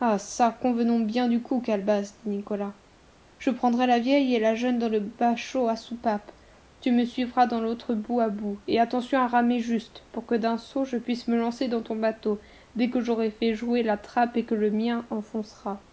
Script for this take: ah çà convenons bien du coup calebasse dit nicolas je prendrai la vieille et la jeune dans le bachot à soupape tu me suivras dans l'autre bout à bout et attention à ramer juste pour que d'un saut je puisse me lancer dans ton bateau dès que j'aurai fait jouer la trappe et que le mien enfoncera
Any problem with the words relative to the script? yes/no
no